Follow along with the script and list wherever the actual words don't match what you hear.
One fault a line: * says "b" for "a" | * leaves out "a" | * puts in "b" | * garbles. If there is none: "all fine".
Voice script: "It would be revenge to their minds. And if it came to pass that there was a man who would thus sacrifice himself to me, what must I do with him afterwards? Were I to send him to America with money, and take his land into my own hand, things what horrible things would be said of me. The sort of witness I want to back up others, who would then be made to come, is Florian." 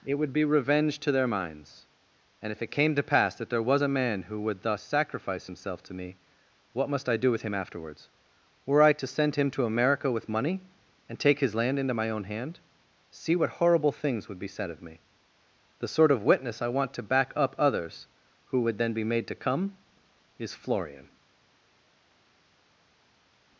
* says "see" for "things"